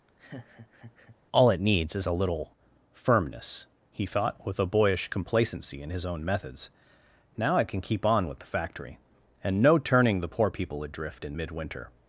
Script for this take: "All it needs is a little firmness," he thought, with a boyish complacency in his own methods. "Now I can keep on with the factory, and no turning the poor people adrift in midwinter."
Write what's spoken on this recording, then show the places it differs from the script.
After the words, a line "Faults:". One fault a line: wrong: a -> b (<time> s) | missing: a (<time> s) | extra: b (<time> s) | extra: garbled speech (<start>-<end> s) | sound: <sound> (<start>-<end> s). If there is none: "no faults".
"All it needs is a little firmness," he thought, with a boyish complacency in his own methods. "Now I can keep on with the factory, and no turning the poor people adrift in midwinter."
Faults:
sound: laugh (0.1-1.2 s)